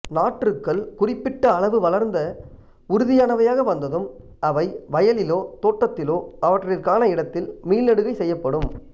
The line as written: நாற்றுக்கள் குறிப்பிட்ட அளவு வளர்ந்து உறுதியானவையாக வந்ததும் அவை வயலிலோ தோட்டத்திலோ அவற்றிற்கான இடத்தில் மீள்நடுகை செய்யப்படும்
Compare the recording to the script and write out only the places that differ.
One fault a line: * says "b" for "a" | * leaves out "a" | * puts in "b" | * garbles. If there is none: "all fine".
all fine